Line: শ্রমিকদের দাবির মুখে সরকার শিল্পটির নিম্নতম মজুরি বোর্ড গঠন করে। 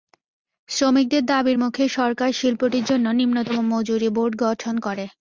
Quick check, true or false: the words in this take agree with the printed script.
false